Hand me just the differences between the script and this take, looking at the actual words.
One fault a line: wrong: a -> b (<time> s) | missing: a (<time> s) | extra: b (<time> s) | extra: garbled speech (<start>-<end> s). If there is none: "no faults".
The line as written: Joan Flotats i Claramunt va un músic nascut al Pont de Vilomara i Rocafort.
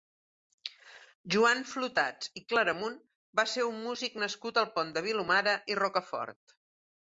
extra: ser (3.5 s)